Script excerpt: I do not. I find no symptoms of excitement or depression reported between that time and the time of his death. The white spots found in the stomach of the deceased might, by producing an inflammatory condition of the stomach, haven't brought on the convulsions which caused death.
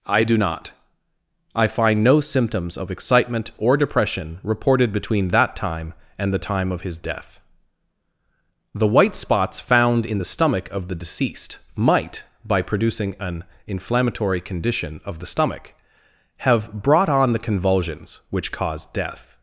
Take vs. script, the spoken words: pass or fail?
fail